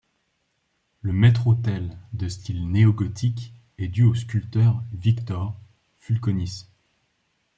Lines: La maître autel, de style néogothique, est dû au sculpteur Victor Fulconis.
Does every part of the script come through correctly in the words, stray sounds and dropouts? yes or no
no